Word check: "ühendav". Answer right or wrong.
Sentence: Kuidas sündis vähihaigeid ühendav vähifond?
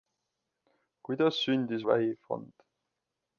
wrong